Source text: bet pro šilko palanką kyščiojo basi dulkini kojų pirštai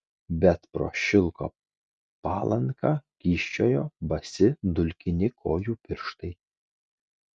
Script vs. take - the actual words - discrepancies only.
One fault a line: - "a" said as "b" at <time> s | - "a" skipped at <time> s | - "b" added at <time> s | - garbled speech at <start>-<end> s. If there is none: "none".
none